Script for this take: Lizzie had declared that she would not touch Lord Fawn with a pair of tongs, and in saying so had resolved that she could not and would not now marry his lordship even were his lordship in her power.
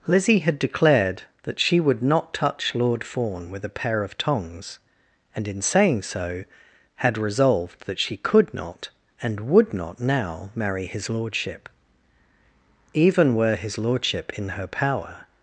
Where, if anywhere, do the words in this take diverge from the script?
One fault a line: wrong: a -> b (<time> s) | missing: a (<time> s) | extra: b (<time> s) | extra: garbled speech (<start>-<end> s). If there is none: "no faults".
no faults